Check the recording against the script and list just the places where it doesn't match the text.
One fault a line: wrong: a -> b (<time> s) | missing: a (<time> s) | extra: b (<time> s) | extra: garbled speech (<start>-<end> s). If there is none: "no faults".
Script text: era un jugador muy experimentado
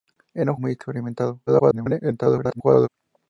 missing: jugador (0.6 s)
extra: garbled speech (1.5-2.9 s)